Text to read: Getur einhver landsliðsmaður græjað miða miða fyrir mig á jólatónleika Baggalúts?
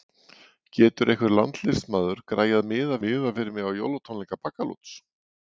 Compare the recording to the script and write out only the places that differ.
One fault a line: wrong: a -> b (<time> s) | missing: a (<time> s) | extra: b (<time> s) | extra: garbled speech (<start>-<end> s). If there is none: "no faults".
no faults